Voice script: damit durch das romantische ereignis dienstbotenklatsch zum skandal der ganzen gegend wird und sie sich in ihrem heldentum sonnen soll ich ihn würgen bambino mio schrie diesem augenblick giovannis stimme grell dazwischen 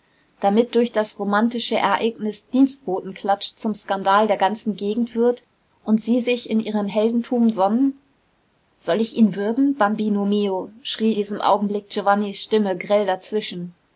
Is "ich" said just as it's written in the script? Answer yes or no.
yes